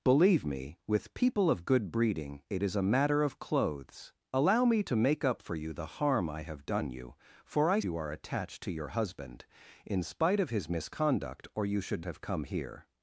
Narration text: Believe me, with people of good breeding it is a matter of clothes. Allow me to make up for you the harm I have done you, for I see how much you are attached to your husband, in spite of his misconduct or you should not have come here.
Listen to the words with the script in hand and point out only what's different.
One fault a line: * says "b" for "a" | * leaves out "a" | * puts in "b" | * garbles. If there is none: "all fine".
* leaves out "see how much"
* leaves out "not"